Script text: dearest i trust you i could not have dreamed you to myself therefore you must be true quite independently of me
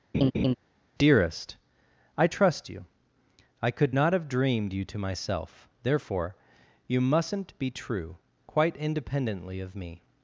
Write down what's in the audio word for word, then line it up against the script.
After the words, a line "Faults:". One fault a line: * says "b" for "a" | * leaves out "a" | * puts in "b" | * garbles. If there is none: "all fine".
dearest i trust you i could not have dreamed you to myself therefore you mustn't be true quite independently of me
Faults:
* says "mustn't" for "must"